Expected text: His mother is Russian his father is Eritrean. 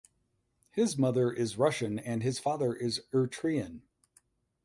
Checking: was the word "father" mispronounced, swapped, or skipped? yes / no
no